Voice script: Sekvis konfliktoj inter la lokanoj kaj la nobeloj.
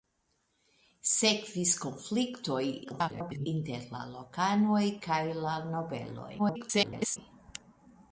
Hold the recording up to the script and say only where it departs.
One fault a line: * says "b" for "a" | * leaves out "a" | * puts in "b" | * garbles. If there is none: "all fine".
* garbles
* garbles